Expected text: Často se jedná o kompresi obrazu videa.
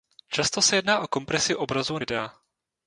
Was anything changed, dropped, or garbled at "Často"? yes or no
no